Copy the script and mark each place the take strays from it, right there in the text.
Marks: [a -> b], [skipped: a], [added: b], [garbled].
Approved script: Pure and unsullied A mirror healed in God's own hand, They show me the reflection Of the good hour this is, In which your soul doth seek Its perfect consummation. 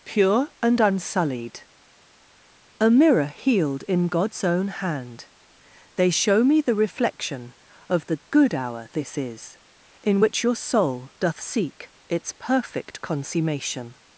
Pure and unsullied A mirror healed in God's own hand, They show me the reflection Of the good hour this is, In which your soul doth seek Its perfect consummation.